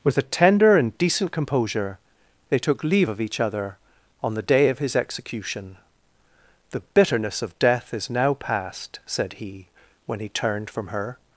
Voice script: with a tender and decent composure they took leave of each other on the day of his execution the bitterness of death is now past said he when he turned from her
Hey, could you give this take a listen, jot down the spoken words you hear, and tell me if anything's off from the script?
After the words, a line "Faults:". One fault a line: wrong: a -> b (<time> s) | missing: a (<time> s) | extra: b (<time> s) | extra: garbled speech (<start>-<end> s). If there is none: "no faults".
with a tender and decent composure they took leave of each other on the day of his execution the bitterness of death is now past said he when he turned from her
Faults:
no faults